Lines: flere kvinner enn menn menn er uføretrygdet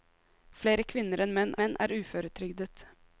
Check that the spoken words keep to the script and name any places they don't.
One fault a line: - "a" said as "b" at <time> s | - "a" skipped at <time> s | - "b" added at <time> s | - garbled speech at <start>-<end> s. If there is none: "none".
none